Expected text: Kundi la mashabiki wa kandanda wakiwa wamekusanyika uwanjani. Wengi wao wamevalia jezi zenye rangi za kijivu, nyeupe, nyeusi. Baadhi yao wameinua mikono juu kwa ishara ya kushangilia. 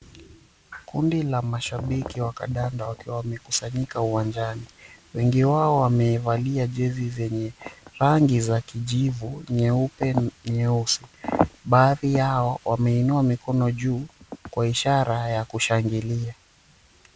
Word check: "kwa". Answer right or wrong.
right